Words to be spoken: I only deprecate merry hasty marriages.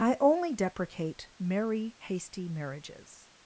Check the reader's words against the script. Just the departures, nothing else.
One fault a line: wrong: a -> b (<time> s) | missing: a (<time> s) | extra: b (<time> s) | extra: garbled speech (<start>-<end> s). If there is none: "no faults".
no faults